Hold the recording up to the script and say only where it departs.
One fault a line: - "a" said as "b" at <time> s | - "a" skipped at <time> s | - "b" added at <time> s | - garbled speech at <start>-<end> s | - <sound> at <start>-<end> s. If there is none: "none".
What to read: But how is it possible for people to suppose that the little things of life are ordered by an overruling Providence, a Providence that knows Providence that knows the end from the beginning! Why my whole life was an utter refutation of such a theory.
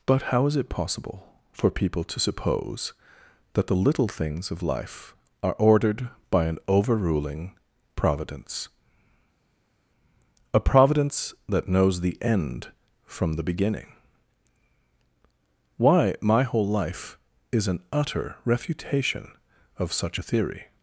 - "Providence that knows" skipped at 12.0 s
- "was" said as "is" at 17.5 s